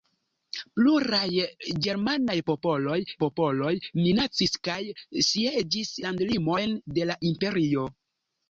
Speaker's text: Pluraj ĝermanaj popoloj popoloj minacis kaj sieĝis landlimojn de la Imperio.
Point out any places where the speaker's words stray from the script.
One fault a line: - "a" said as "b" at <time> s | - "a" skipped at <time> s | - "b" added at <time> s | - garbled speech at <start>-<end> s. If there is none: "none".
none